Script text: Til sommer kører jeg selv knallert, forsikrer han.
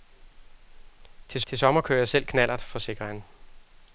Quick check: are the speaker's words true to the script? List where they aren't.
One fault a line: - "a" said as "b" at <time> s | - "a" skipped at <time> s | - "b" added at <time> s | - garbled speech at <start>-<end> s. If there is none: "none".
- "til" added at 1.5 s